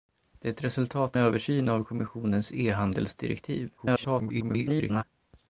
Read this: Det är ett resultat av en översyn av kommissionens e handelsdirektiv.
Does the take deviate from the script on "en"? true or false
true